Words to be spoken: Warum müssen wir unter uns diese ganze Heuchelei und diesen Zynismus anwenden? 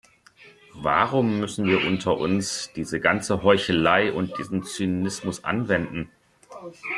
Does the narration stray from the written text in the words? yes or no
no